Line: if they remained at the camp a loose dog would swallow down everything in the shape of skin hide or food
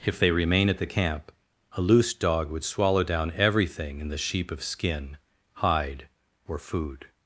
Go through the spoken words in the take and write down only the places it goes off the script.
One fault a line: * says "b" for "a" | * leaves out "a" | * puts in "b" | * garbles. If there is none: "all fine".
* says "remain" for "remained"
* says "sheep" for "shape"